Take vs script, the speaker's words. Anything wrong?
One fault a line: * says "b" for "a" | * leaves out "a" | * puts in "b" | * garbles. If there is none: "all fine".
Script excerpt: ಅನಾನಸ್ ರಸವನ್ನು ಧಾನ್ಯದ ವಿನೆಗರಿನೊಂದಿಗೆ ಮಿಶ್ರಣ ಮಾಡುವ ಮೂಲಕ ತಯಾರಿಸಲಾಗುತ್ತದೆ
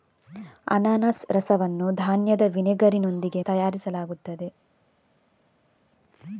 * leaves out "ಮಿಶ್ರಣ ಮಾಡುವ ಮೂಲಕ"